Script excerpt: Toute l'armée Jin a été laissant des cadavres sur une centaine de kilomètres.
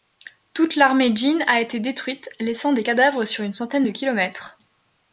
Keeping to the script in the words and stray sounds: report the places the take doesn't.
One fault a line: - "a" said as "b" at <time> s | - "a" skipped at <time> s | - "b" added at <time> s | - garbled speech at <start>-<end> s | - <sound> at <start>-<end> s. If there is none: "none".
- "détruite" added at 1.8 s